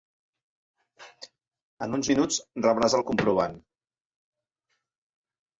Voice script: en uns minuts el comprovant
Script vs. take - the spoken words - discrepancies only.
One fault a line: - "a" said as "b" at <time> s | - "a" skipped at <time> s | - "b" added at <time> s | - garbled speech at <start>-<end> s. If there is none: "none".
- "rebràs" added at 2.7 s